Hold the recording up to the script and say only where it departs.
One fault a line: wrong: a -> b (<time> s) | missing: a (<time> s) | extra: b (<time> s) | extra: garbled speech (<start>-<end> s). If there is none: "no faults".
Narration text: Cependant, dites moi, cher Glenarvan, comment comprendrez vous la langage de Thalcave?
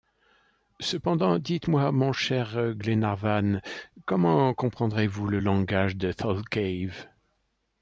extra: mon (1.9 s)
wrong: la -> le (5.3 s)